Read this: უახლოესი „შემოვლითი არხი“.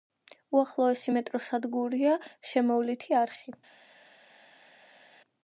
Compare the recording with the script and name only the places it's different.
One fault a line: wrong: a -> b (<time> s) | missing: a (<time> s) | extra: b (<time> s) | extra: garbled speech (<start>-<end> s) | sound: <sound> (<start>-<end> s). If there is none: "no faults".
extra: მეტროს სადგურია (1.1 s)